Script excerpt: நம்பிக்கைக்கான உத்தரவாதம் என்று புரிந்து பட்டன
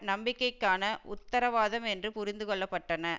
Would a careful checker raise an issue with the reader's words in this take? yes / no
yes